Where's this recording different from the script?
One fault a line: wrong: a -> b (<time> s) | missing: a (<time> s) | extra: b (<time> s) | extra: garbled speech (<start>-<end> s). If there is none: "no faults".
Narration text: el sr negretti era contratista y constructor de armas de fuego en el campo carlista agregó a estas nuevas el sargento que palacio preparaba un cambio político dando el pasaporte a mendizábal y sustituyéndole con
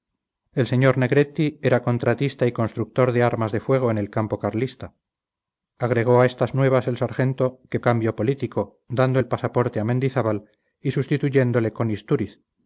missing: palacio preparaba un (7.8 s)